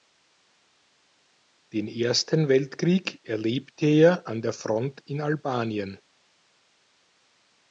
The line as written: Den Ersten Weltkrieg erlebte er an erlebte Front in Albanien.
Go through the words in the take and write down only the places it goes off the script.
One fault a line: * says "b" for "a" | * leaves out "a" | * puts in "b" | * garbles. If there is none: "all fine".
* says "der" for "erlebte"